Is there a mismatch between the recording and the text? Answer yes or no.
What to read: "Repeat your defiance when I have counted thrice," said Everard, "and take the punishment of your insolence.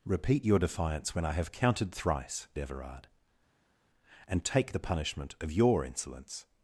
yes